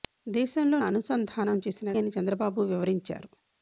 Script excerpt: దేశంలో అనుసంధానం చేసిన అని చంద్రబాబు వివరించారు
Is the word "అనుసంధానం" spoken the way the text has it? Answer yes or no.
yes